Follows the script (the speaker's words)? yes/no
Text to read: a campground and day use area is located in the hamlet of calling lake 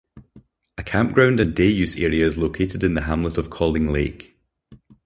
yes